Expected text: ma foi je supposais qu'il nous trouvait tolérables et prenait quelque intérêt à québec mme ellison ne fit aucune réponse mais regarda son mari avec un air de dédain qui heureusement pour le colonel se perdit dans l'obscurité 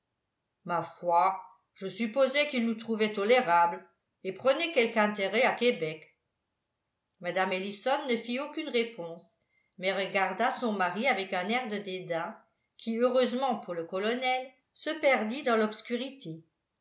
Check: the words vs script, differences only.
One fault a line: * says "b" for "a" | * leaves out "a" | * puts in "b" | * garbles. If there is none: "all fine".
all fine